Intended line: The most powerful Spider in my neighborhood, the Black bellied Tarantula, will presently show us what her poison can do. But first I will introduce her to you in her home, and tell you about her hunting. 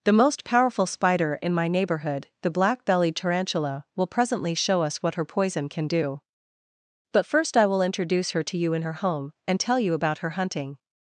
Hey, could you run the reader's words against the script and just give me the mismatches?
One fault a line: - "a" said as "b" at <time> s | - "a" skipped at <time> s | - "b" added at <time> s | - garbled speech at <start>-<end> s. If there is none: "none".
none